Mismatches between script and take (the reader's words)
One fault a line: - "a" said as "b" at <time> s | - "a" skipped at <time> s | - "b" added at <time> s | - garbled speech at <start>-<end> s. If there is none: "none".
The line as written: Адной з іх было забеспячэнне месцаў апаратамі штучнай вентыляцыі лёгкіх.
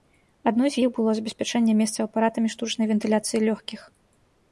none